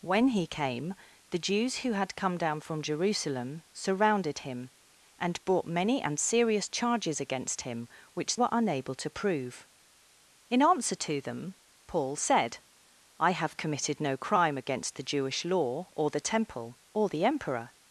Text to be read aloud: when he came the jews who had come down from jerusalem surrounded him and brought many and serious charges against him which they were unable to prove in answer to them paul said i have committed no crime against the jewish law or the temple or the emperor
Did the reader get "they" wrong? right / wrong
wrong